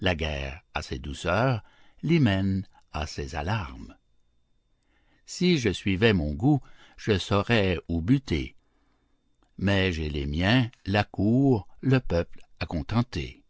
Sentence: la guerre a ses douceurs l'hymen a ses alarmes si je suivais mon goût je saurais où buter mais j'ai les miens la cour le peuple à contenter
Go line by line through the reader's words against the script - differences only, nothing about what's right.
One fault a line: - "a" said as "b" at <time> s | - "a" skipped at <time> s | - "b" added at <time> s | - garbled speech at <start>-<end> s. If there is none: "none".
none